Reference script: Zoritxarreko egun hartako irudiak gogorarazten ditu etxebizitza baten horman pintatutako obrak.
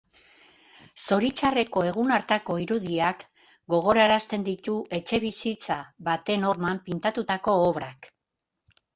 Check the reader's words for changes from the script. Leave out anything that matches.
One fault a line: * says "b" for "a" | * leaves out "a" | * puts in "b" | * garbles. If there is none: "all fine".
all fine